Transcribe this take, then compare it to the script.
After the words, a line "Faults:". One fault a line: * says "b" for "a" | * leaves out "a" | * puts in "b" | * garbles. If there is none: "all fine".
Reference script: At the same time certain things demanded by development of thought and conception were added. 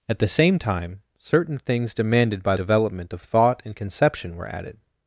At the same time certain things demanded by development of thought and conception were added.
Faults:
all fine